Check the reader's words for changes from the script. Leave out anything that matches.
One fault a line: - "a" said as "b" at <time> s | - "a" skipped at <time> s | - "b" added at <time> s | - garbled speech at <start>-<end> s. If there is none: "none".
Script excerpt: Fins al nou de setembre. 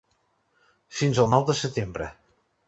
none